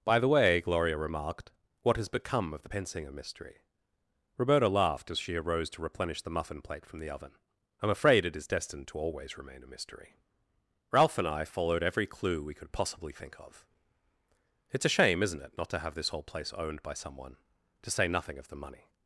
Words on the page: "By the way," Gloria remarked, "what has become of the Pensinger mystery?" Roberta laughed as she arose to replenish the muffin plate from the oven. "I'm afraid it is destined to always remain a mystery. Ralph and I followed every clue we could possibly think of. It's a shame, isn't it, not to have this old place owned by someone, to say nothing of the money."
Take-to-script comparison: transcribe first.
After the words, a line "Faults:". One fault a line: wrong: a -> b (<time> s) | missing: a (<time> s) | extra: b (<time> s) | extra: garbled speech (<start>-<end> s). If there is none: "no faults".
"By the way," Gloria remarked, "what has become of the Pensinger mystery?" Roberta laughed as she arose to replenish the muffin plate from the oven. "I'm afraid it is destined to always remain a mystery. Ralph and I followed every clue we could possibly think of. It's a shame, isn't it, not to have this whole place owned by someone, to say nothing of the money."
Faults:
wrong: old -> whole (16.1 s)